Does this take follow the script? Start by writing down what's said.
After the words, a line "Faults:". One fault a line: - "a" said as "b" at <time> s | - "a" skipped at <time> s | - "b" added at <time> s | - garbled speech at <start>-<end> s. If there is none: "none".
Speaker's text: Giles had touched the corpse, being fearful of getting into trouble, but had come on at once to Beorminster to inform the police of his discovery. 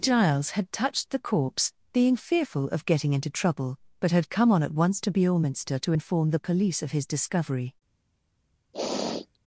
Giles had touched the corpse, being fearful of getting into trouble, but had come on at once to Beorminster to inform the police of his discovery.
Faults:
none